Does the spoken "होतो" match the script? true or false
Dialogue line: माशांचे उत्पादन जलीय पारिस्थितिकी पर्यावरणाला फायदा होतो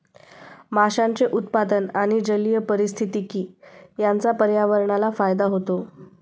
true